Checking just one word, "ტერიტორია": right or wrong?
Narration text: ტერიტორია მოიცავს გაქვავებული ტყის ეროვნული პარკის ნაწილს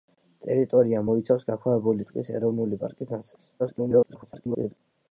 right